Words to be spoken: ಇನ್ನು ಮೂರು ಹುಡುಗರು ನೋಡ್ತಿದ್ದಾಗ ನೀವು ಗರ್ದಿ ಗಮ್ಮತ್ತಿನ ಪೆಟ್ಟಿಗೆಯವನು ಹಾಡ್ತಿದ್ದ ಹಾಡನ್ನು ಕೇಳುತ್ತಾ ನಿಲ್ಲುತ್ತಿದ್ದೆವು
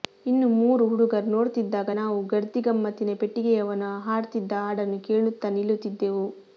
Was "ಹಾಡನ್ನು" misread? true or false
false